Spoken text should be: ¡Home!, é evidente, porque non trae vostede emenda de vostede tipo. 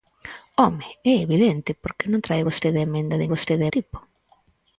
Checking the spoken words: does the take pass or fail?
pass